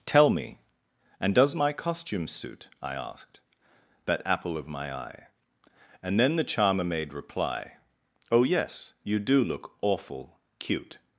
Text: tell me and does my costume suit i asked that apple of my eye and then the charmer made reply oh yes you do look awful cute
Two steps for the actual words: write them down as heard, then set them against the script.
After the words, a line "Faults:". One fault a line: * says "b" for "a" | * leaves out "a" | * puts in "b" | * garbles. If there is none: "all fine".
tell me and does my costume suit i asked that apple of my eye and then the charmer made reply oh yes you do look awful cute
Faults:
all fine